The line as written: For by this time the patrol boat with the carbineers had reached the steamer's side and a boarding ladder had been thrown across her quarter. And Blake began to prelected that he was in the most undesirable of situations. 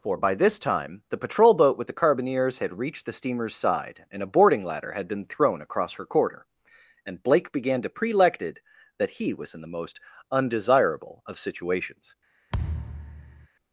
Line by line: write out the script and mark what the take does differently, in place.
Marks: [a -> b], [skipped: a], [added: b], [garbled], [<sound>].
For by this time the patrol boat with the carbineers had reached the steamer's side and a boarding ladder had been thrown across her quarter. And Blake began to prelected that he was in the most undesirable of situations. [thud]